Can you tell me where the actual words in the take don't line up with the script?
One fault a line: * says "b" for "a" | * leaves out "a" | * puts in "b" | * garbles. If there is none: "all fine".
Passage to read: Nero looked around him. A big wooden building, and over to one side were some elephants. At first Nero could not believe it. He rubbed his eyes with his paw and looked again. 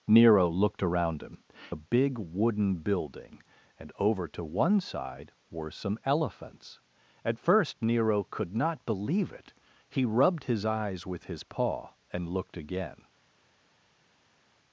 all fine